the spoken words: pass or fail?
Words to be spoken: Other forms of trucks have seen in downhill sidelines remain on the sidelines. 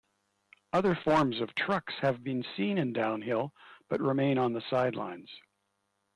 fail